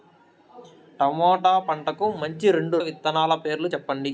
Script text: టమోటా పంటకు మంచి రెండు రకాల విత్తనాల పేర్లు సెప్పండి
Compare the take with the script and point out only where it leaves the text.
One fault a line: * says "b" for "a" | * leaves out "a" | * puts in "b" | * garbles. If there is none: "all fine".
* leaves out "రకాల"